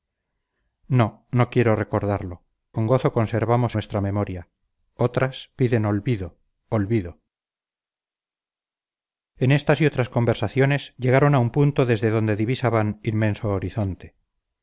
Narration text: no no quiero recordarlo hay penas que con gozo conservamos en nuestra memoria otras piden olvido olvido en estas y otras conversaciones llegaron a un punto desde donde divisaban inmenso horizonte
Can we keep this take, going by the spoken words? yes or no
no